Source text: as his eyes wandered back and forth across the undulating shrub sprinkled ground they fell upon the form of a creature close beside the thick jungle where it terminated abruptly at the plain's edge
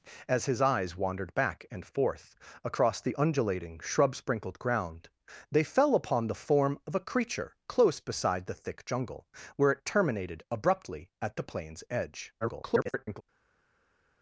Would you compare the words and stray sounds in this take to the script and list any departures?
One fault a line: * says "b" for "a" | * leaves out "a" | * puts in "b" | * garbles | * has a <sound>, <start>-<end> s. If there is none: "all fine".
* garbles